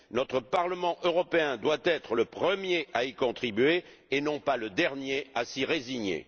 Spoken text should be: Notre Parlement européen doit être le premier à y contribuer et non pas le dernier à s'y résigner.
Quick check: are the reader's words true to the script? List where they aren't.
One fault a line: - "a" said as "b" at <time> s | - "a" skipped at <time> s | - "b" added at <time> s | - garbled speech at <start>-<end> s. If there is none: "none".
none